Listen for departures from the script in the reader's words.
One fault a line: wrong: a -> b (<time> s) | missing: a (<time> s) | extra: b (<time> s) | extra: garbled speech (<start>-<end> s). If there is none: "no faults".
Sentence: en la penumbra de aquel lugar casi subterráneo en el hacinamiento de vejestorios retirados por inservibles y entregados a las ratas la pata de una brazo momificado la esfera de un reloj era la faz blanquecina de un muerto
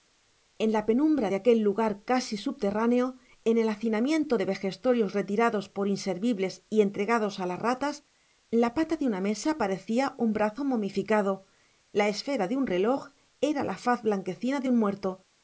extra: mesa parecía un (9.2 s)